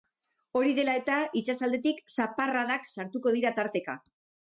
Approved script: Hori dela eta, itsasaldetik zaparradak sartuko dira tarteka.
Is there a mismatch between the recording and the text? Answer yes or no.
no